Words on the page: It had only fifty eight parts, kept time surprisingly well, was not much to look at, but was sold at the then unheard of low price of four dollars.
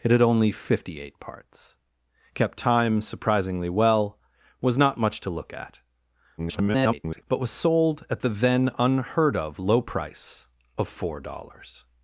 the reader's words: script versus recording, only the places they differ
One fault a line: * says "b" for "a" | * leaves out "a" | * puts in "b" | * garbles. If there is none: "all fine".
* garbles